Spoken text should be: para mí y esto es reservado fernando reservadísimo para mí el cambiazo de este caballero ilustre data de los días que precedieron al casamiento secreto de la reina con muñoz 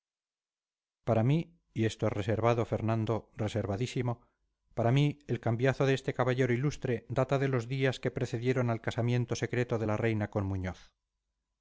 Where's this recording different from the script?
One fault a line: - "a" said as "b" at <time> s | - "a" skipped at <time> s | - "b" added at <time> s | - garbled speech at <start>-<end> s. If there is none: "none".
none